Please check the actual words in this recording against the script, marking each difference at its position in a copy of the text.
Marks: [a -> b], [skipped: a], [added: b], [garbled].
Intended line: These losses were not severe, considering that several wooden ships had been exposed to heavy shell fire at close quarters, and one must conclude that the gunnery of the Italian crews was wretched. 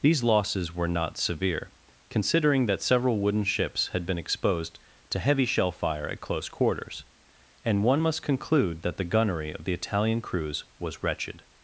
These losses were not severe, considering that several wooden ships had been exposed to heavy shell fire at close quarters, and one must conclude that the gunnery of the Italian crews was wretched.